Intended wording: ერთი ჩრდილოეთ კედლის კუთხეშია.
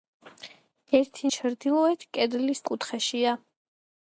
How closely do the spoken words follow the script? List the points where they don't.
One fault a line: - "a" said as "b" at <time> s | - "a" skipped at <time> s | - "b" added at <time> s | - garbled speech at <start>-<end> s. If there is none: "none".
none